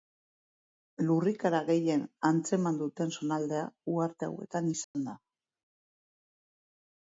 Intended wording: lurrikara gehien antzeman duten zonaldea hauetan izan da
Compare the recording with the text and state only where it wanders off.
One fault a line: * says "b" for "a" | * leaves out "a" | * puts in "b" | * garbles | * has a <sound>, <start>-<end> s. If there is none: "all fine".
* puts in "uharte"
* has a dropout, 4.8-4.9 s